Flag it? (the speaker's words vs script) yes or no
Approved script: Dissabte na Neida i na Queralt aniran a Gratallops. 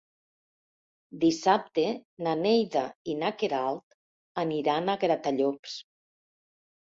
no